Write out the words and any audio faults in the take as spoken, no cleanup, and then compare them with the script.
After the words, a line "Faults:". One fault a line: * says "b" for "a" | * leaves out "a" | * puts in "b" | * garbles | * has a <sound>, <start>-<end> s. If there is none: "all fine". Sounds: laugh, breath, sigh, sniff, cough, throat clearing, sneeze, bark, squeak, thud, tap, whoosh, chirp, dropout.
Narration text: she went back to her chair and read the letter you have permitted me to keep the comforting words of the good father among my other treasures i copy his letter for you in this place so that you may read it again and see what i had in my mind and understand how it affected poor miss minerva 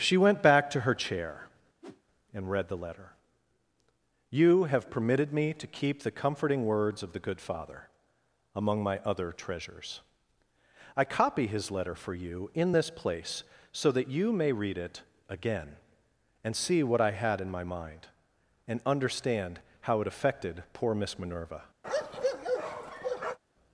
she went back to her chair and read the letter you have permitted me to keep the comforting words of the good father among my other treasures i copy his letter for you in this place so that you may read it again and see what i had in my mind and understand how it affected poor miss minerva
Faults:
* has a whoosh, 1.8-2.0 s
* has a bark, 21.8-23.4 s